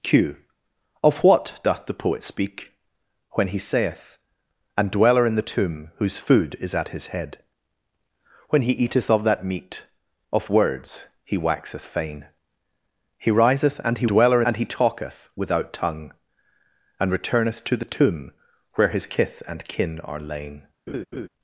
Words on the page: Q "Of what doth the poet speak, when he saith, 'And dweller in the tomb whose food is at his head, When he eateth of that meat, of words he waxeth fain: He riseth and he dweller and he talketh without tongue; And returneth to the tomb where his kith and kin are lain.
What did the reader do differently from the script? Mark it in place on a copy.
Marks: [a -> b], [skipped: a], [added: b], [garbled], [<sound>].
Q "Of what doth the poet speak, when he saith, 'And dweller in the tomb whose food is at his head, When he eateth of that meat, of words he waxeth fain: He riseth and he dweller and he talketh without tongue; And returneth to the tomb where his kith and kin are lain. [laugh]